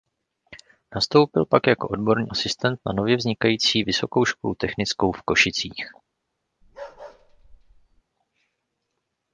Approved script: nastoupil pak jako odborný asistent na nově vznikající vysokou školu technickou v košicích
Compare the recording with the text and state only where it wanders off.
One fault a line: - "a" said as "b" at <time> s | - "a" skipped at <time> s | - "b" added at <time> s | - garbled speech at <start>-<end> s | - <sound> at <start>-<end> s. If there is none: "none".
- bark at 6.6-8.0 s